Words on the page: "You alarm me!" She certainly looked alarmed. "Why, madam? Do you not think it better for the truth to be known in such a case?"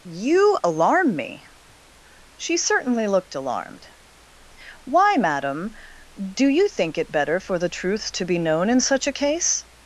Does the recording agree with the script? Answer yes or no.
no